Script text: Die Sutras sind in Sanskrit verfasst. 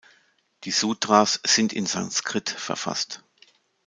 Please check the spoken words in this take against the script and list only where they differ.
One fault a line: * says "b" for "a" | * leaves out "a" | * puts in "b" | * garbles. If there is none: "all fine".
all fine